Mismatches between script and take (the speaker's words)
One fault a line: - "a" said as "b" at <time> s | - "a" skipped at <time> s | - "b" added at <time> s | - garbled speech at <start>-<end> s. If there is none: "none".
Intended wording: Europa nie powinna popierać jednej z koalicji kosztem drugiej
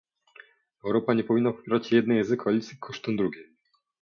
none